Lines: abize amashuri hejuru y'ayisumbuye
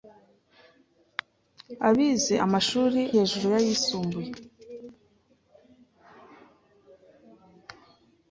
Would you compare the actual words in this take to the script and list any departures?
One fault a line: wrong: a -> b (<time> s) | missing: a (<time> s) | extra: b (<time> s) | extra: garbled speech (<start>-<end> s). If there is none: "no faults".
no faults